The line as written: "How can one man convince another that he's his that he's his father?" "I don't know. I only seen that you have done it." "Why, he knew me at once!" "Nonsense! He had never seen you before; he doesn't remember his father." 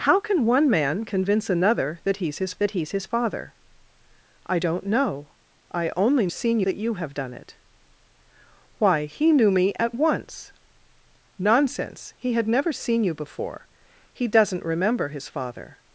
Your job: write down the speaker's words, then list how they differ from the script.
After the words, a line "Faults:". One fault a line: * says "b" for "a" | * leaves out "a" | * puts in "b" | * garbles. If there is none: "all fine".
"How can one man convince another that he's his that he's his father?" "I don't know. I only seen that you have done it." "Why, he knew me at once!" "Nonsense! He had never seen you before; he doesn't remember his father."
Faults:
all fine